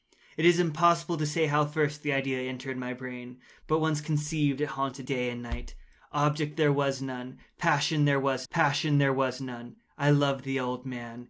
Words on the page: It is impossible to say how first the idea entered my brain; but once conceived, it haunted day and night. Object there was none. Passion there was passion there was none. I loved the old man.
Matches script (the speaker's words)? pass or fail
pass